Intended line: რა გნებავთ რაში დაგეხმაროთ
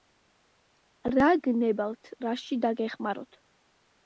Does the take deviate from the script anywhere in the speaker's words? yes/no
no